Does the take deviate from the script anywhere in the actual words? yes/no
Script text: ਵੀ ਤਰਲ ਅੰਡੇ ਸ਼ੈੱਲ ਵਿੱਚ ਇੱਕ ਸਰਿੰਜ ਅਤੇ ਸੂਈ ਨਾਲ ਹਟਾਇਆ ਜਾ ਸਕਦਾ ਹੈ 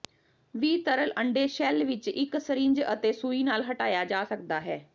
no